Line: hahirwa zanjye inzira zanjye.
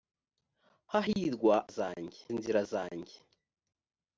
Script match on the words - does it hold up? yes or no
yes